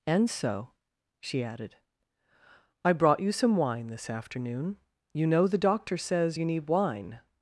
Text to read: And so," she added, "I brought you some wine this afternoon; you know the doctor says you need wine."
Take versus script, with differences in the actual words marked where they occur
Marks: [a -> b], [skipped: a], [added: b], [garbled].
And so," she added, "I brought you some wine this afternoon; you know the doctor says you need wine."